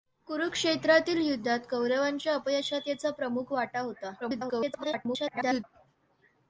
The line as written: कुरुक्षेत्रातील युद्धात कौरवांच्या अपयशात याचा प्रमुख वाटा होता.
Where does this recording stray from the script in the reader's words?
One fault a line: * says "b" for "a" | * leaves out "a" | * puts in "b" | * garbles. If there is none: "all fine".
* garbles